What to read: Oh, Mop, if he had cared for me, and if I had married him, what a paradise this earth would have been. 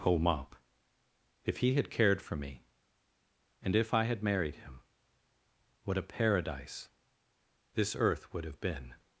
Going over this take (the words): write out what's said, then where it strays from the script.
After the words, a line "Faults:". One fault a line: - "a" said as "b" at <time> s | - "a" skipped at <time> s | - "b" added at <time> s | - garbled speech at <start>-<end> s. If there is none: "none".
Oh, Mop, if he had cared for me, and if I had married him, what a paradise this earth would have been.
Faults:
none